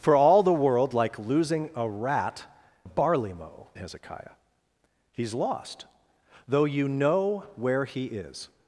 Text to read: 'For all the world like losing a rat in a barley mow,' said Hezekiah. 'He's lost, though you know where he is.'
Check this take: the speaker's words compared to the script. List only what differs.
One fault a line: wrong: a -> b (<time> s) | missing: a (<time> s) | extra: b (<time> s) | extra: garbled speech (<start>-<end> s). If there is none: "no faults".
missing: in (2.5 s)
missing: said (3.7 s)